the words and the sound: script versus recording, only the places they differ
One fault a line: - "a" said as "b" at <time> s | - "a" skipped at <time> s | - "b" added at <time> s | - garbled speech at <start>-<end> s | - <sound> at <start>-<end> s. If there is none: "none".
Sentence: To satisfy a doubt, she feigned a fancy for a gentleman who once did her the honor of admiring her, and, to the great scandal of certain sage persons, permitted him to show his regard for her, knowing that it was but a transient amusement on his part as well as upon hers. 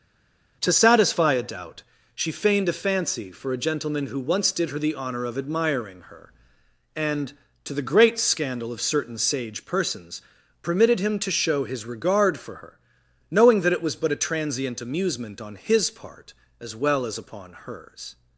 none